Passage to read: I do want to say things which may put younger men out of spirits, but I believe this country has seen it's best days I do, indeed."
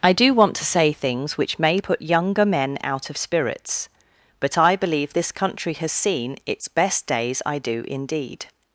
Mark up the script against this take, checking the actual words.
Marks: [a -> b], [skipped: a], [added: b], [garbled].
I do want to say things which may put younger men out of spirits, but I believe this country has seen it's best days I do, indeed."